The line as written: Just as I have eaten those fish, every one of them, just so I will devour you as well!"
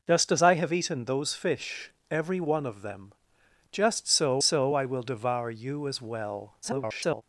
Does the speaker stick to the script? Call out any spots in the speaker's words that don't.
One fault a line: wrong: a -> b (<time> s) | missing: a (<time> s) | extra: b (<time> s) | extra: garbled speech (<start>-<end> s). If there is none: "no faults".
extra: so (4.4 s)
extra: garbled speech (6.6-7.2 s)